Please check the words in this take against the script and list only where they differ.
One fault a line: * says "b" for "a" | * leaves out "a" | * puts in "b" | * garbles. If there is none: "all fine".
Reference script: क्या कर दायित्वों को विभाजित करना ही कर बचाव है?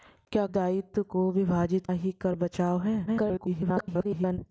* leaves out "कर"
* leaves out "करना"
* garbles